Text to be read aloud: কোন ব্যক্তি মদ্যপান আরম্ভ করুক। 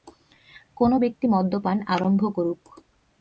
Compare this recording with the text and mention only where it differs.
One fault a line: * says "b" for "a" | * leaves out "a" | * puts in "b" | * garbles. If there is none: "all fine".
all fine